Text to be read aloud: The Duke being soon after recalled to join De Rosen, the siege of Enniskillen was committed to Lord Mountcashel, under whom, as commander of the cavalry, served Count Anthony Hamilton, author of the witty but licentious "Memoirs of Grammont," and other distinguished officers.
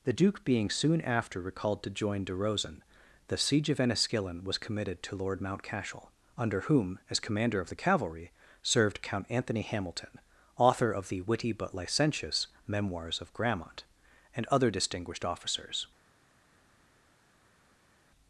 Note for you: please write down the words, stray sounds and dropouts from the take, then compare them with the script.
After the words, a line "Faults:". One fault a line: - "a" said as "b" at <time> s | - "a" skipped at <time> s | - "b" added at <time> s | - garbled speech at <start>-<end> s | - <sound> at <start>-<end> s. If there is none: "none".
The Duke being soon after recalled to join De Rosen, the siege of Enniskillen was committed to Lord Mountcashel, under whom, as commander of the cavalry, served Count Anthony Hamilton, author of the witty but licentious "Memoirs of Grammont," and other distinguished officers.
Faults:
none